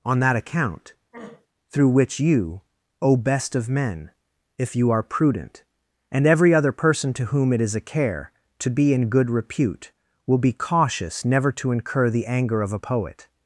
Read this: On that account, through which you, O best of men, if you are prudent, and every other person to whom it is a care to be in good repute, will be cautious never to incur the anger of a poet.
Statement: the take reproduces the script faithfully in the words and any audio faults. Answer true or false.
false